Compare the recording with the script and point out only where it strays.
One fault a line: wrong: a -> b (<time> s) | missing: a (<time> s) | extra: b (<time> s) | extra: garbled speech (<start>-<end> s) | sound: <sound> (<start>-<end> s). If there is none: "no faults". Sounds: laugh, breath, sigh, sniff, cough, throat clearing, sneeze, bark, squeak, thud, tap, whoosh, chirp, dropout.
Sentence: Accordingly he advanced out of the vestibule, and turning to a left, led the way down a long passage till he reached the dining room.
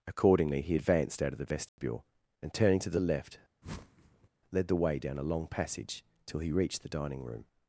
sound: dropout (1.7-1.8 s)
wrong: a -> the (2.9 s)
sound: whoosh (3.6-4.3 s)